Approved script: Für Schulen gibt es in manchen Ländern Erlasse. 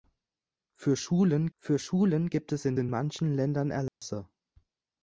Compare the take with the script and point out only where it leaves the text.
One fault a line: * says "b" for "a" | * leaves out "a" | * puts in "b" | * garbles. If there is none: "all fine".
* puts in "für Schulen"
* puts in "in"